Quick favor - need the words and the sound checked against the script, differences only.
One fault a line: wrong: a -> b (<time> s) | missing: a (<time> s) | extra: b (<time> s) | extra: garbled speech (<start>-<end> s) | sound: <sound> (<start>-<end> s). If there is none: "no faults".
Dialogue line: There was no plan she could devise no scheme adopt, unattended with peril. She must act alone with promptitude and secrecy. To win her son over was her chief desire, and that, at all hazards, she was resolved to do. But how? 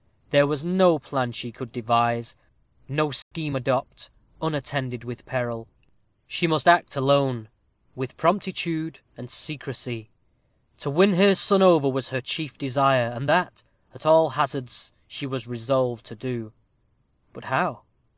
sound: dropout (3.2-3.3 s)